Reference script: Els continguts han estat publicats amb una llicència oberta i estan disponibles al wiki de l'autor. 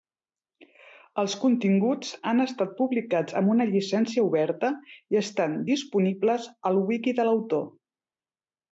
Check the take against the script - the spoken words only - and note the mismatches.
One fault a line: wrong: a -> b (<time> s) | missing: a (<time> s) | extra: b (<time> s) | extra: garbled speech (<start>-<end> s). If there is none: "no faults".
no faults